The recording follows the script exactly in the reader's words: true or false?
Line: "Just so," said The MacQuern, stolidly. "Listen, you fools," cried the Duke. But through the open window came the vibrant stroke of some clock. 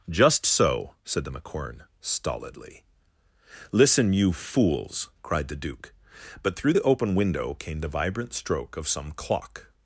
true